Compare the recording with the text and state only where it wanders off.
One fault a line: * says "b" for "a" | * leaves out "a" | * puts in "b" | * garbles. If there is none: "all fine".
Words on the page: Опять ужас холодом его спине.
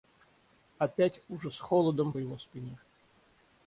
all fine